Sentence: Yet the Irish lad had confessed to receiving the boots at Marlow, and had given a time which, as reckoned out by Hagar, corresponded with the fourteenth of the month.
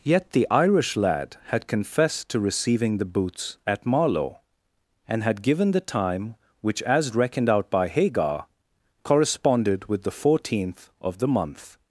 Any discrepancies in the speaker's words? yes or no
yes